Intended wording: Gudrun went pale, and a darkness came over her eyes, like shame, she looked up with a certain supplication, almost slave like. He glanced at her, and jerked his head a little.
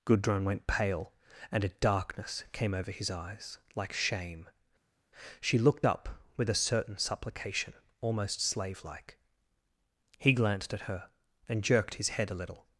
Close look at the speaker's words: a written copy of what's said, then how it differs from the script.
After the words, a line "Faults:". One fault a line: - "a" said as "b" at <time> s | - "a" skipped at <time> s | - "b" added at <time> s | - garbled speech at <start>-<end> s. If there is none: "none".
Gudrun went pale, and a darkness came over his eyes, like shame, she looked up with a certain supplication, almost slave like. He glanced at her, and jerked his head a little.
Faults:
- "her" said as "his" at 2.9 s